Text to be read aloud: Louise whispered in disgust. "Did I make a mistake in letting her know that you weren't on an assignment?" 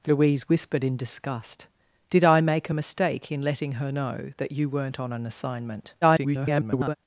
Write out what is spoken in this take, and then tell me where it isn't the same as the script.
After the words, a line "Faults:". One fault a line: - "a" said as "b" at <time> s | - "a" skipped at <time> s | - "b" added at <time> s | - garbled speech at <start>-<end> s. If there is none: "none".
Louise whispered in disgust. "Did I make a mistake in letting her know that you weren't on an assignment?" [garbled]
Faults:
- garbled speech at 6.0-7.0 s